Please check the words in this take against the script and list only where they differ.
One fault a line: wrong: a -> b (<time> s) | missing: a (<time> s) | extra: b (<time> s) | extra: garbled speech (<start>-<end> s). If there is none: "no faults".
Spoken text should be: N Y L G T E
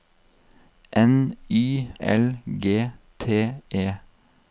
no faults